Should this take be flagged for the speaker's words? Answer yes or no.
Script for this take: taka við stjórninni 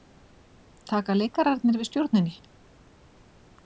yes